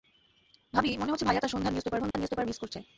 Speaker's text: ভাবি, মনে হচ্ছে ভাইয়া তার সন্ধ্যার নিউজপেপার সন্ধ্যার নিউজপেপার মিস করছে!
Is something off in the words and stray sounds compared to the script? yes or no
yes